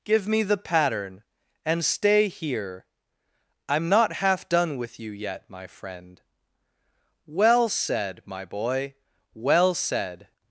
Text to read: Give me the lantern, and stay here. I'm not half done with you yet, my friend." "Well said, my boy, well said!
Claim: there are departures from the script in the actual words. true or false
true